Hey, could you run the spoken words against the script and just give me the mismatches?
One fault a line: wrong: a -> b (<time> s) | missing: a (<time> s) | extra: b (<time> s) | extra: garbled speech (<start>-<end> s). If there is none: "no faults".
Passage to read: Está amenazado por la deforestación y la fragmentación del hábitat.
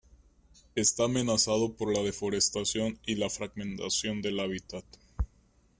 no faults